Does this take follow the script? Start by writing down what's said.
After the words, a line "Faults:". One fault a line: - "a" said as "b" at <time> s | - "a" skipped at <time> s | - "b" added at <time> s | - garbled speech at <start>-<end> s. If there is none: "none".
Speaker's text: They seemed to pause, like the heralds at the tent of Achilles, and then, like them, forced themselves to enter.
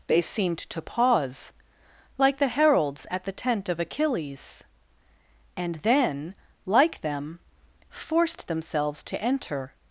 They seemed to pause, like the heralds at the tent of Achilles, and then, like them, forced themselves to enter.
Faults:
none